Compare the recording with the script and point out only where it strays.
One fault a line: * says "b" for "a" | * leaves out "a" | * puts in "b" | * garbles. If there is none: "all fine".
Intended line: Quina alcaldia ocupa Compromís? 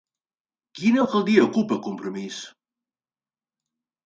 all fine